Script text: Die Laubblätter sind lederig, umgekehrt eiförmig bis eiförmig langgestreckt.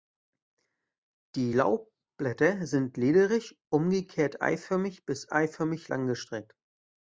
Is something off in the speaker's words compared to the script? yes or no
no